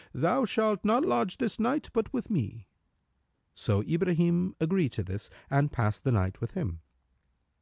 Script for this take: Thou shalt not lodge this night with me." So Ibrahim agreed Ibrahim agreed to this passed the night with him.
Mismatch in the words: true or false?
true